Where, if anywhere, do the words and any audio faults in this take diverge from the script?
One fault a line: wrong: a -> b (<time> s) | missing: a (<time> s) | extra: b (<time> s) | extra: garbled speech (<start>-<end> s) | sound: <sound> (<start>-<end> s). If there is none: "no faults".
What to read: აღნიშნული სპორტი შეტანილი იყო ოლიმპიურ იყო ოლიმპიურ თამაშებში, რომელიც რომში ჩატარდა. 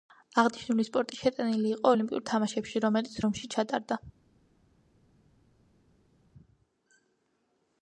missing: იყო ოლიმპიურ (2.2 s)